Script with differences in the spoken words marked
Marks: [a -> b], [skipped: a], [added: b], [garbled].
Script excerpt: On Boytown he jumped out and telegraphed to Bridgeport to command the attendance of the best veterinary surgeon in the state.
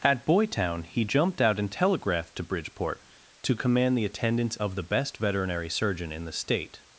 [On -> At] Boytown he jumped out and telegraphed to Bridgeport to command the attendance of the best veterinary surgeon in the state.